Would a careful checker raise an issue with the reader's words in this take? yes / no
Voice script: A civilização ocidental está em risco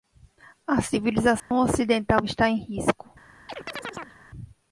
no